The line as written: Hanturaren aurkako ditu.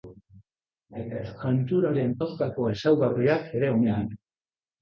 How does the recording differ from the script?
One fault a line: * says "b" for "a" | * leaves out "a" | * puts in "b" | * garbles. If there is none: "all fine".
* puts in "ezaugarriak ere omen"